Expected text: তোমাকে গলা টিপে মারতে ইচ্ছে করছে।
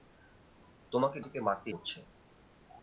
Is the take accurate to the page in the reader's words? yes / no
no